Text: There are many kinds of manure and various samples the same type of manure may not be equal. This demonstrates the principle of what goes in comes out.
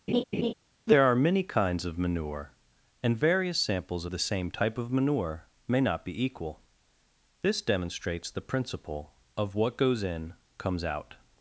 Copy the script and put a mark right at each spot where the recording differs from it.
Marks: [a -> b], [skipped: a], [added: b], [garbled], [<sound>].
[laugh] There are many kinds of manure and various samples the same type of manure may not be equal. This demonstrates the principle of what goes in comes out.